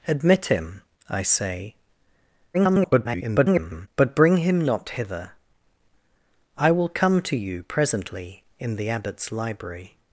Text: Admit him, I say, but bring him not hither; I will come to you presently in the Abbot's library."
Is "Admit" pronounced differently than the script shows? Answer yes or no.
no